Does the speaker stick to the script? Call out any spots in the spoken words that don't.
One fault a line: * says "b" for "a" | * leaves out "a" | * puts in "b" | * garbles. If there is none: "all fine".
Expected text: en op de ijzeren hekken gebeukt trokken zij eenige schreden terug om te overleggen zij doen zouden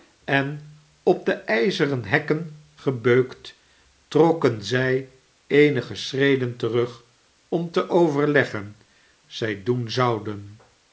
all fine